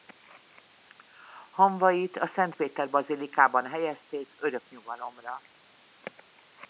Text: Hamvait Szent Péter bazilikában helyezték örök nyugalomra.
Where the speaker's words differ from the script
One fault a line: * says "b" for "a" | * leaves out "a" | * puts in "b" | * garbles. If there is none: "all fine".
* puts in "a"